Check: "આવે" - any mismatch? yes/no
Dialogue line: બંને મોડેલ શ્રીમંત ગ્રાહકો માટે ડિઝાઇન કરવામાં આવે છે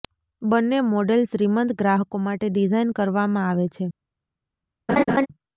no